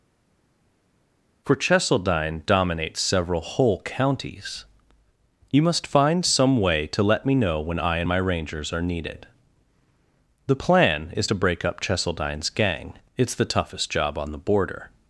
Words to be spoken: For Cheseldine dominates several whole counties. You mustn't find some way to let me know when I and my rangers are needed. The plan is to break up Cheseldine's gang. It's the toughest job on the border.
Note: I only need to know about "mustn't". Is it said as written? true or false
false